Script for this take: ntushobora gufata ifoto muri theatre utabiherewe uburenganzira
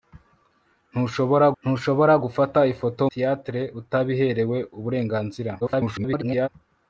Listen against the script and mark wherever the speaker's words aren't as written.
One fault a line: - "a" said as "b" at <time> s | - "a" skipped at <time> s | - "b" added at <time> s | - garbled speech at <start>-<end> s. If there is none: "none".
- "ntushobora" added at 1.6 s
- "muri" skipped at 3.0 s
- garbled speech at 5.6-6.5 s